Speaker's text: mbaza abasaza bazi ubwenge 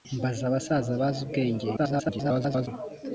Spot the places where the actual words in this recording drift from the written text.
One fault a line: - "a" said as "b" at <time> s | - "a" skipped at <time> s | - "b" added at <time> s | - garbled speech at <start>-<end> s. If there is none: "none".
- garbled speech at 1.8-2.7 s